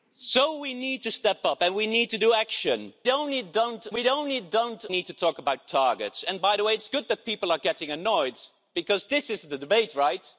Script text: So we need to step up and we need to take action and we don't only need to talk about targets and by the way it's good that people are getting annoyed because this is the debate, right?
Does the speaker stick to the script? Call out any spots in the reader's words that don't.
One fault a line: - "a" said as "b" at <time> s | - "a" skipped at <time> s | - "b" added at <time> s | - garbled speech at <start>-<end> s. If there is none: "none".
- "and" said as "don't" at 3.1 s
- "only" skipped at 4.9 s